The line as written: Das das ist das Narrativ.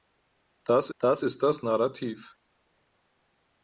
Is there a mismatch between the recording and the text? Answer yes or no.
no